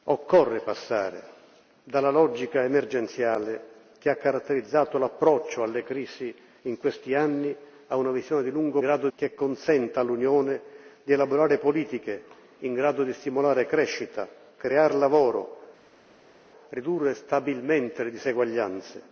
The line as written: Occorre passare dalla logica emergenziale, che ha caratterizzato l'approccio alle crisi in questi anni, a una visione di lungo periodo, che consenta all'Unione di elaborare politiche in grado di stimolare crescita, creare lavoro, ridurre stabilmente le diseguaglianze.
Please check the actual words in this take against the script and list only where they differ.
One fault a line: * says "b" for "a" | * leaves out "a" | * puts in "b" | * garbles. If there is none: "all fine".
* says "grado" for "periodo"